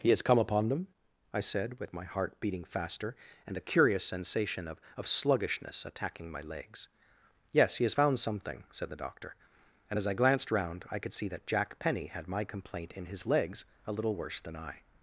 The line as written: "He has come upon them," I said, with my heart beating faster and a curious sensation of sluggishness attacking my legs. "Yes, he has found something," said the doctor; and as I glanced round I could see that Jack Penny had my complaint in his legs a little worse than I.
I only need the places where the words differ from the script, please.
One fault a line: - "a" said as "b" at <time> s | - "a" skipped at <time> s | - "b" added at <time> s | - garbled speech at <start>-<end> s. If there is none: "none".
- "of" added at 5.0 s